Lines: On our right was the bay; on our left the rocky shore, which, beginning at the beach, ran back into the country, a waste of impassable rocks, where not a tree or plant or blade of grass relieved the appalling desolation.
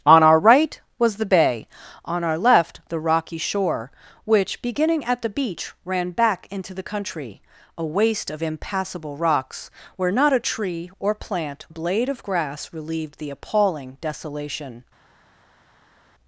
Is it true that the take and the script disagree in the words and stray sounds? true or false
true